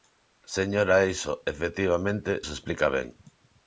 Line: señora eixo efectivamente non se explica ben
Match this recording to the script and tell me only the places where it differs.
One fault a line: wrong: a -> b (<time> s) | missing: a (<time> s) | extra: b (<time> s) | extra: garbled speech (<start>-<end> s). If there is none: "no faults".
missing: non (2.3 s)